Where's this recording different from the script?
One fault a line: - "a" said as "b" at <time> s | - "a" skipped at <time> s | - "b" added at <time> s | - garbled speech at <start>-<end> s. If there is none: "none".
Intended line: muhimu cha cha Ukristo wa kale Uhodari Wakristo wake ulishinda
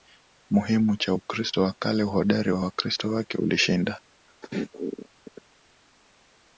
- "cha" skipped at 1.1 s
- "wa" added at 2.5 s